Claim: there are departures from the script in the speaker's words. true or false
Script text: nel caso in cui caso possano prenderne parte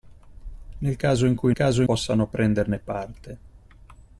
false